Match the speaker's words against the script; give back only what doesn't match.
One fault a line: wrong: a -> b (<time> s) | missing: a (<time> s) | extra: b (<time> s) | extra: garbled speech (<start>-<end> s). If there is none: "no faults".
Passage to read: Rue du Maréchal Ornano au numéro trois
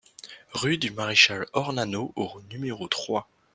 no faults